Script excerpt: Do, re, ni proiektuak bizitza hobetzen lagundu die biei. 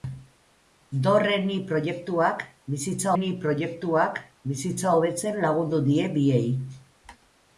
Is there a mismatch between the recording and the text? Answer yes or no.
yes